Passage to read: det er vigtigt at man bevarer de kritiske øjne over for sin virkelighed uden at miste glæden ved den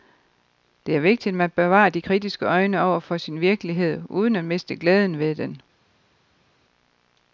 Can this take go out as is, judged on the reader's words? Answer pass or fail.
pass